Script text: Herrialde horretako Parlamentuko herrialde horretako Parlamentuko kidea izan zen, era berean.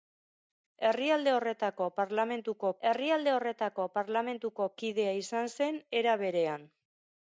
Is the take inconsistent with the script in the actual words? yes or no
no